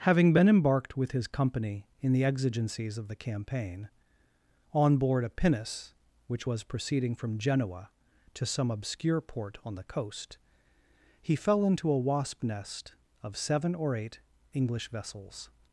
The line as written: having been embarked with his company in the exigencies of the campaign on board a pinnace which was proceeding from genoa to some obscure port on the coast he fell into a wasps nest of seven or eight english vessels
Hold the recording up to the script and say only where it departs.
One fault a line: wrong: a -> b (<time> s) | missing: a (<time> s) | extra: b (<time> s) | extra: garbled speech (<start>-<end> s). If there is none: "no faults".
wrong: wasps -> wasp (12.0 s)